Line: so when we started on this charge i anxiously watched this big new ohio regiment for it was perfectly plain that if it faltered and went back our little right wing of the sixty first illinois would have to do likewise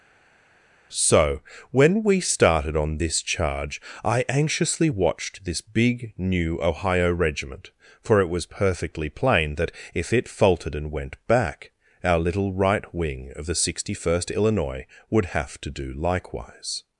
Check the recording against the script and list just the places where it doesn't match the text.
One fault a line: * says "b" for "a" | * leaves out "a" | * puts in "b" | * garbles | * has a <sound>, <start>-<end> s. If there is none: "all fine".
all fine